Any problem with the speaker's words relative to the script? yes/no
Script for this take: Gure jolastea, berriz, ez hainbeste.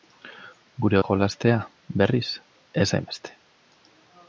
no